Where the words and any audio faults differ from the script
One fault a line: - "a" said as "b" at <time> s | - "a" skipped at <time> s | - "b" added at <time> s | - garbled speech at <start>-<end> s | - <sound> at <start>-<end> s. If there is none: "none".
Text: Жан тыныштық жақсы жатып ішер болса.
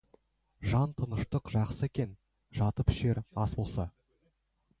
- "екен" added at 1.9 s
- "ас" added at 3.5 s